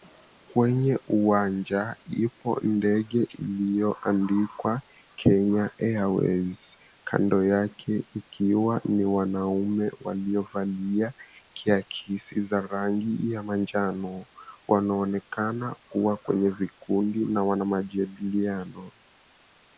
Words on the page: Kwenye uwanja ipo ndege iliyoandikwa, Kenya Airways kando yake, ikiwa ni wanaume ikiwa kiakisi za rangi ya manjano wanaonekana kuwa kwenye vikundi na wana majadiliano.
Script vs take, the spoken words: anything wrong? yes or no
yes